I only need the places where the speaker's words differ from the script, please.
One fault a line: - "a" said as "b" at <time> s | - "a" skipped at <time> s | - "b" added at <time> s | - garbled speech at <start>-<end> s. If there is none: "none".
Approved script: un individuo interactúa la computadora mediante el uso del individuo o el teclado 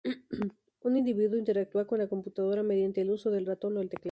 - "con" added at 1.9 s
- "individuo" said as "ratón" at 3.5 s